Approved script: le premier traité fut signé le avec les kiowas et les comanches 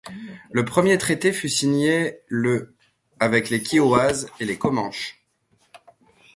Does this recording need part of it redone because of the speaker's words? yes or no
no